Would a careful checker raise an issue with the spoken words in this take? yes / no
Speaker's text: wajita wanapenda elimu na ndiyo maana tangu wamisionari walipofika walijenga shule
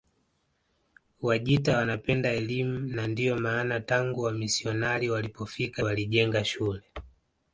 no